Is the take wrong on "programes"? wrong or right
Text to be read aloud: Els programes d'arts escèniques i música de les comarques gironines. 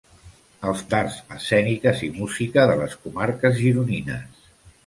wrong